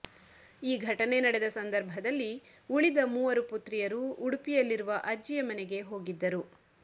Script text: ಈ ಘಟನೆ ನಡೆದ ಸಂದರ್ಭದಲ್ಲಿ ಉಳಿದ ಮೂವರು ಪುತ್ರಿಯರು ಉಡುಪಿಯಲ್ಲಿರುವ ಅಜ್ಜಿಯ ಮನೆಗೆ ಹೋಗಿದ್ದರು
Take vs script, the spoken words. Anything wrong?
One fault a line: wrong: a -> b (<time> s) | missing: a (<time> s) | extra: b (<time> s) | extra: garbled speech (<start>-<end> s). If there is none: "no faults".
no faults